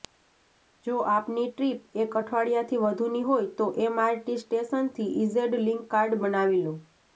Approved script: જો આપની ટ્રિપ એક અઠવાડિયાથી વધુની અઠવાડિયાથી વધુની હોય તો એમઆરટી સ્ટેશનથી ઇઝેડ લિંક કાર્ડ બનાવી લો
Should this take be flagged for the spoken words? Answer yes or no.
yes